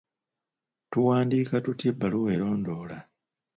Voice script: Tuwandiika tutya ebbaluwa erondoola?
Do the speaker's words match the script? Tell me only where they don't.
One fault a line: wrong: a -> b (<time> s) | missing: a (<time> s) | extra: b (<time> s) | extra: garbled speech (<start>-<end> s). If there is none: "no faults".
no faults